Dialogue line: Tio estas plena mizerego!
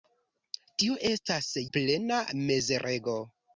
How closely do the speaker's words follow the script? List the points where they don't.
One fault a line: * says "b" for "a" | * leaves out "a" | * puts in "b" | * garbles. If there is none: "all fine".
all fine